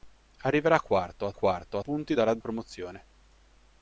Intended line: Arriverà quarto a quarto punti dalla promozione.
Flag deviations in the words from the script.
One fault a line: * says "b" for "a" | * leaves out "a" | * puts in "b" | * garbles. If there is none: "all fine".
all fine